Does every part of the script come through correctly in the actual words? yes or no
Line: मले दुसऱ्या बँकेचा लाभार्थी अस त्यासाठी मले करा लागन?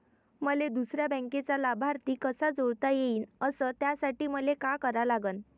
no